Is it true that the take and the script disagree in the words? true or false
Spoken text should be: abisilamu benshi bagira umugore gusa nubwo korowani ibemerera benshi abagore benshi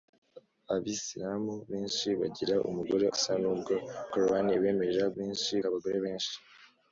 false